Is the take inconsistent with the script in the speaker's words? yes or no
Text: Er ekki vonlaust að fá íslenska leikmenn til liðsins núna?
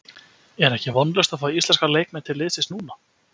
no